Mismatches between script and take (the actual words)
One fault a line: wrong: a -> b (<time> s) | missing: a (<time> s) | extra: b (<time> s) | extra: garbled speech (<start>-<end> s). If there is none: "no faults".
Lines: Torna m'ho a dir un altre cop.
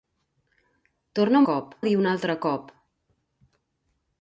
wrong: m'ho -> cop (1.5 s)